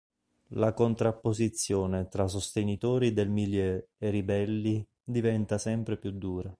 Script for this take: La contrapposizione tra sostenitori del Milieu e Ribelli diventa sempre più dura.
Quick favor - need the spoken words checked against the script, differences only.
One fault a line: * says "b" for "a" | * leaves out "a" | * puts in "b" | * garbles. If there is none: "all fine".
all fine